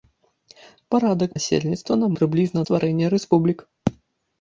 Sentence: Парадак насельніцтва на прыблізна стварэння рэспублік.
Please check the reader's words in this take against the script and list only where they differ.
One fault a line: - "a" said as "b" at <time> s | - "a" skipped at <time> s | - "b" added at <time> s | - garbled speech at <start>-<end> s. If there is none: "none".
none